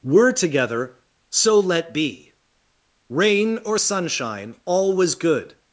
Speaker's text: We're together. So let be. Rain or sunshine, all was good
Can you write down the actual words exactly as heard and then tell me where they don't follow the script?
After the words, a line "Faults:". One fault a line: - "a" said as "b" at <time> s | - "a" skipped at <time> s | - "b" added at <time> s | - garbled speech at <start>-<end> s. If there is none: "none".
We're together. So let be. Rain or sunshine, all was good
Faults:
none